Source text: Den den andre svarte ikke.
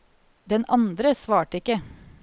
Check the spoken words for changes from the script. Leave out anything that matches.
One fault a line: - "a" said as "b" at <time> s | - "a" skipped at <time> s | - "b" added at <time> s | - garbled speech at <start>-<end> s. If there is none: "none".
- "den" skipped at 0.7 s